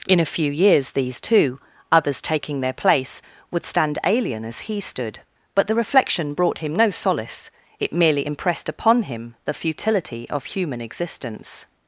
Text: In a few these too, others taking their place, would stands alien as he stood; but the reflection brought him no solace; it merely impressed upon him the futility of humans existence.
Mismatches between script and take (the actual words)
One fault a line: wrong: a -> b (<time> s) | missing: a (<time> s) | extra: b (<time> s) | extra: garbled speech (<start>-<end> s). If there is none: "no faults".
extra: years (0.5 s)
wrong: stands -> stand (3.6 s)
wrong: humans -> human (10.4 s)